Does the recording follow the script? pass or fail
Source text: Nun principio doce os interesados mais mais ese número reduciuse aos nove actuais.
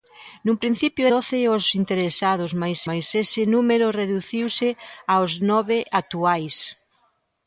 pass